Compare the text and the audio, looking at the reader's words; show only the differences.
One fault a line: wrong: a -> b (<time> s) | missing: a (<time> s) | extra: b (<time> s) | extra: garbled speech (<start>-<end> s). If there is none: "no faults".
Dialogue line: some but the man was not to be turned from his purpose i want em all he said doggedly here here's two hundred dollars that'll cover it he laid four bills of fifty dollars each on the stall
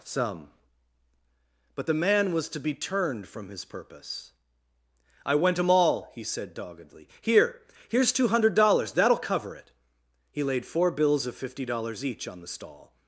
missing: not (2.5 s)
wrong: want -> went (5.3 s)